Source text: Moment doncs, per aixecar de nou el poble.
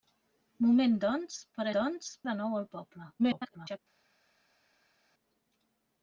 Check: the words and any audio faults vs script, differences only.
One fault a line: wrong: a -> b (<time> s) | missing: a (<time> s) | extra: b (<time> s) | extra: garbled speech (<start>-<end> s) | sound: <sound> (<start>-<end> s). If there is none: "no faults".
wrong: aixecar -> doncs (1.8 s)
extra: garbled speech (3.2-3.8 s)